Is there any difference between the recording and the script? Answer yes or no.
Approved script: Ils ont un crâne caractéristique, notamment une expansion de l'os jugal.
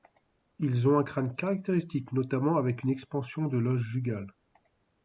yes